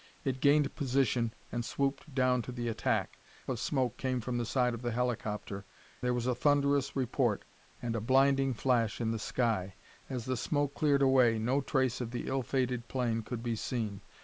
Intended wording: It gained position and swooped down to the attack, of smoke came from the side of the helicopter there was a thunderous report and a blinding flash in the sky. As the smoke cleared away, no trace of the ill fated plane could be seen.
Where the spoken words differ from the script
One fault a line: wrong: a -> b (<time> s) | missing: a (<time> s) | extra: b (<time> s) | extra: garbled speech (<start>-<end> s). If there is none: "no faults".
no faults